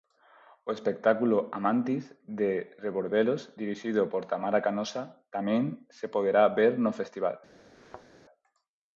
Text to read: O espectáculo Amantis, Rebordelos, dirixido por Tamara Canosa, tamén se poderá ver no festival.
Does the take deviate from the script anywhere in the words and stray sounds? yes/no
yes